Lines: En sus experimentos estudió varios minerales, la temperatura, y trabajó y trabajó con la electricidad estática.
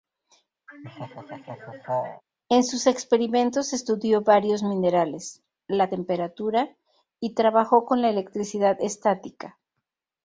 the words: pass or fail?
fail